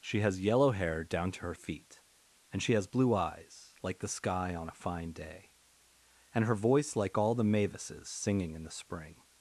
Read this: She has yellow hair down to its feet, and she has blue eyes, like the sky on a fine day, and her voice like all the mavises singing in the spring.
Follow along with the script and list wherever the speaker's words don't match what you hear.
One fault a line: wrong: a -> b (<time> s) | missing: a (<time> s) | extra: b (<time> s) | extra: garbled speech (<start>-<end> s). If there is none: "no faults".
wrong: its -> her (1.4 s)